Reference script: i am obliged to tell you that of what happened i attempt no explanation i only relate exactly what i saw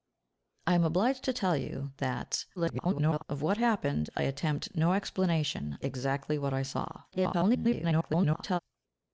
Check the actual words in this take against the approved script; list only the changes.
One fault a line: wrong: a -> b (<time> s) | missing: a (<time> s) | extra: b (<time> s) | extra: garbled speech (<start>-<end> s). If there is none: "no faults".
extra: garbled speech (2.6-3.2 s)
missing: i only relate (5.8 s)
extra: garbled speech (7.1-8.6 s)